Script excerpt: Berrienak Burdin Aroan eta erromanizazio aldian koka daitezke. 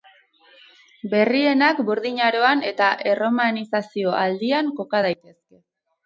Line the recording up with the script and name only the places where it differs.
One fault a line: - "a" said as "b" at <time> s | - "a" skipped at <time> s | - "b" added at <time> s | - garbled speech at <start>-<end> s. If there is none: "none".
none